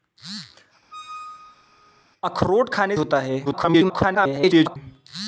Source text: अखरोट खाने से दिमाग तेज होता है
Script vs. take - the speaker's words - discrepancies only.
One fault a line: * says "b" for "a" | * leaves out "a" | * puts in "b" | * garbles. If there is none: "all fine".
* leaves out "से दिमाग तेज"
* garbles